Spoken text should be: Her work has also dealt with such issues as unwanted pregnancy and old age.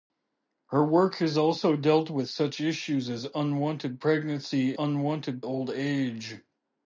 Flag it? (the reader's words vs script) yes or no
yes